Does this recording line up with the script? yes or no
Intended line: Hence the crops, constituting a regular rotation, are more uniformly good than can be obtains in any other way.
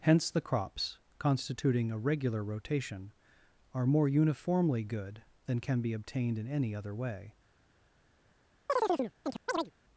no